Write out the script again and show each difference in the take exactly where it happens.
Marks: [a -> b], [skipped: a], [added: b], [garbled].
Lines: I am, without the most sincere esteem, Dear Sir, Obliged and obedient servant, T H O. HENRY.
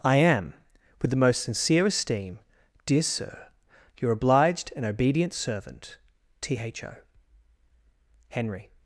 I am, [without -> with] the most sincere esteem, Dear Sir, [added: Your] Obliged and obedient servant, T H O. HENRY.